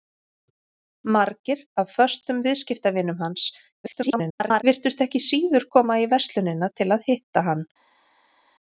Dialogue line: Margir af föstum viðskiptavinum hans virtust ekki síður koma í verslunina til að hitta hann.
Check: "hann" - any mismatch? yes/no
no